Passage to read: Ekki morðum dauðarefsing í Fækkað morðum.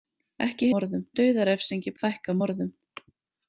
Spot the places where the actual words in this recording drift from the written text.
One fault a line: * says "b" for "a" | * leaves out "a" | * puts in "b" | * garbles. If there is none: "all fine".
all fine